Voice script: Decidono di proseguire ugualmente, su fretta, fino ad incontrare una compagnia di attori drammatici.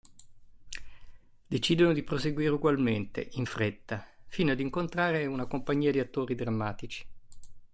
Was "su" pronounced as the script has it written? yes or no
no